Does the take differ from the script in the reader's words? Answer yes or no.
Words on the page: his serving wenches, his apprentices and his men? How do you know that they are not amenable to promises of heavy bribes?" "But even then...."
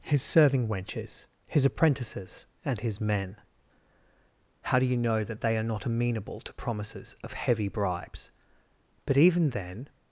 no